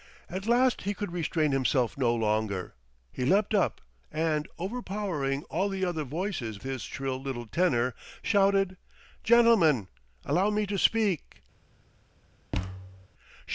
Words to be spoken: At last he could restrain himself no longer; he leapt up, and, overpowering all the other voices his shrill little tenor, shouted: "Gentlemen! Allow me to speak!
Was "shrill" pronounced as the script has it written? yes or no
yes